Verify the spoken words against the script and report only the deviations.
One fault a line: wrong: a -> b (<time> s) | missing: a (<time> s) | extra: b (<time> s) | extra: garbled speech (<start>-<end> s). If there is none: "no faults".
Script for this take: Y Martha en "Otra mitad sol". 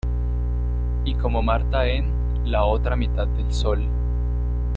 extra: Como (1.1 s)
extra: La (2.4 s)
extra: del (3.3 s)